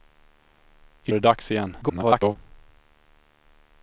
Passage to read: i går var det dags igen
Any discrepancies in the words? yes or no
yes